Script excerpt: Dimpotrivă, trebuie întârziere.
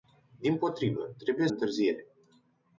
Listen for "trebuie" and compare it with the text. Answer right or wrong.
right